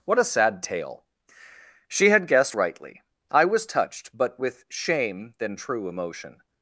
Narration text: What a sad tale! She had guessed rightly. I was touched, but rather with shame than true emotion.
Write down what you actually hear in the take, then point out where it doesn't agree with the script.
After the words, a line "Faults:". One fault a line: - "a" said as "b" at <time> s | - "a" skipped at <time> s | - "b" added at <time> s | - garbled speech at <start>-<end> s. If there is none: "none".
What a sad tale! She had guessed rightly. I was touched, but with shame than true emotion.
Faults:
- "rather" skipped at 4.4 s